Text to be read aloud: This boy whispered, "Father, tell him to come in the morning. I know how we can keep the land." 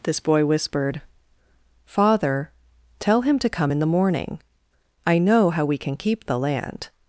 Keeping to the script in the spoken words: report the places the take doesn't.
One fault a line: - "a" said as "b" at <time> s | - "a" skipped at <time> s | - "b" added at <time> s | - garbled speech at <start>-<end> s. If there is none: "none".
none